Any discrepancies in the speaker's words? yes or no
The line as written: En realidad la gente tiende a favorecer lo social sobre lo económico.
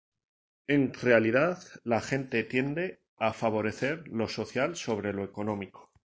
no